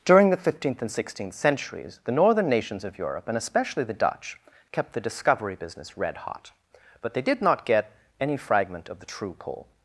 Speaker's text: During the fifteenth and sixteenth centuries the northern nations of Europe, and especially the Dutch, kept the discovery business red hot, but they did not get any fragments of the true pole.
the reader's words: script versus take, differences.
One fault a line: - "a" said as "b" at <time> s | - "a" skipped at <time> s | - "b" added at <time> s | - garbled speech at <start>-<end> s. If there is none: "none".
- "fragments" said as "fragment" at 8.4 s